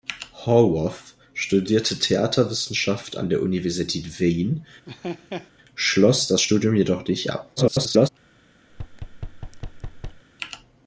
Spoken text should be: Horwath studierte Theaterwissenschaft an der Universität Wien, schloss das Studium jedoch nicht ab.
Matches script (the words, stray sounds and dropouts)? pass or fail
fail